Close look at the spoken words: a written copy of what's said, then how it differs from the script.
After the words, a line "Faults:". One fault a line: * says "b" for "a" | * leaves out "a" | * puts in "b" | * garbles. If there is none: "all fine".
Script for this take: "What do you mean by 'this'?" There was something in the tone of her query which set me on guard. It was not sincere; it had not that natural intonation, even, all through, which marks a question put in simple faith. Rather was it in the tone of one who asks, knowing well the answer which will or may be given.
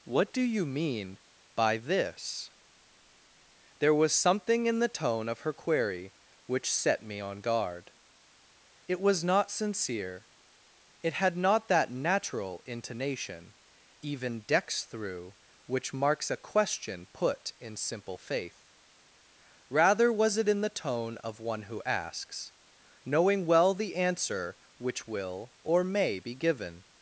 "What do you mean by 'this'?" There was something in the tone of her query which set me on guard. It was not sincere; it had not that natural intonation, even, dex through, which marks a question put in simple faith. Rather was it in the tone of one who asks, knowing well the answer which will or may be given.
Faults:
* says "dex" for "all"